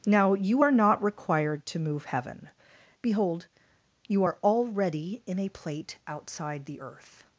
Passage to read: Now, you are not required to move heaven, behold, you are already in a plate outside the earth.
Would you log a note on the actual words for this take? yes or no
no